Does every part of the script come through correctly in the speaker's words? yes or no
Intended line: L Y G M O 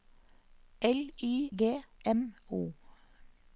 yes